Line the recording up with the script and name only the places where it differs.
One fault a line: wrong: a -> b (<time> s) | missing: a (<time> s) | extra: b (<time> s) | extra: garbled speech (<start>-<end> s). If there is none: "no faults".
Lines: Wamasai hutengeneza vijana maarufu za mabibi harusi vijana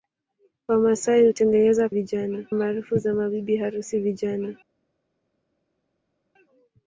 no faults